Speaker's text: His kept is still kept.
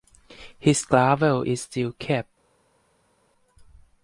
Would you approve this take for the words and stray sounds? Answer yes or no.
no